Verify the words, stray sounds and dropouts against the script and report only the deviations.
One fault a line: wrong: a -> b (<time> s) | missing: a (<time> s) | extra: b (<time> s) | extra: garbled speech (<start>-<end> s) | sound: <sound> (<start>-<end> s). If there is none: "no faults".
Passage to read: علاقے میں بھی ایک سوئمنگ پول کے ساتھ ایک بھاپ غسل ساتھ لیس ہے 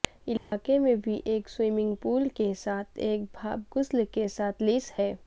sound: dropout (0.4-0.5 s)
extra: کے (4.1 s)